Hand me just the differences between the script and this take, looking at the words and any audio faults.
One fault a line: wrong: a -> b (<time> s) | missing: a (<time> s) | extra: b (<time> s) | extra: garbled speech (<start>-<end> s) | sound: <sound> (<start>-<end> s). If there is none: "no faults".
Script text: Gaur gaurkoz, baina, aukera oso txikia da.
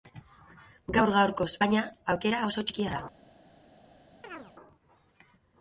sound: chirp (4.2-4.5 s)